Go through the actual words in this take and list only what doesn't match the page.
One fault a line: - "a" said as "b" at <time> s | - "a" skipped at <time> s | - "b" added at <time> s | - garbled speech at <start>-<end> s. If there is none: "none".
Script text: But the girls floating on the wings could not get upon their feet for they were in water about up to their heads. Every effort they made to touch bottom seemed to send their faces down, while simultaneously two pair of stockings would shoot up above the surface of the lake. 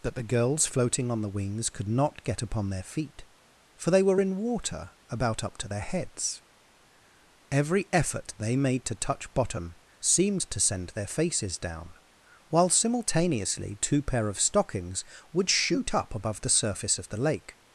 - "But" said as "That" at 0.0 s